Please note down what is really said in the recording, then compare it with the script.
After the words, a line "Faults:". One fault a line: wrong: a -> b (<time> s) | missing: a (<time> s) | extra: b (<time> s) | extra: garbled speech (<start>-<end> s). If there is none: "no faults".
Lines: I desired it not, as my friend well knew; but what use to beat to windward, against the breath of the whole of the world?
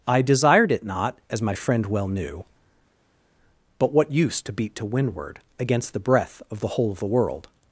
I desired it not, as my friend well knew; but what use to beat to windward, against the breath of the whole of the world?
Faults:
no faults